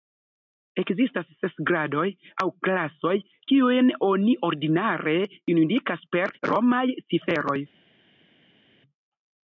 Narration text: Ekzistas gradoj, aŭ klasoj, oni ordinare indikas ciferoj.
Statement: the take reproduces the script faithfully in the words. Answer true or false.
false